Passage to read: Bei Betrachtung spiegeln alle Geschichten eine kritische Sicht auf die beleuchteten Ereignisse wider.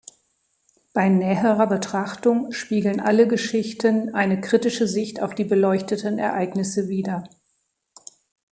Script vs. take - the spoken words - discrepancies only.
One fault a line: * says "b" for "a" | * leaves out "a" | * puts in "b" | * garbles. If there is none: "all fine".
* puts in "näherer"